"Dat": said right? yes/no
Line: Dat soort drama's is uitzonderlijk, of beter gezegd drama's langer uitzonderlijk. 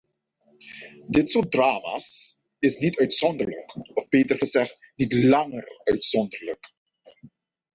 no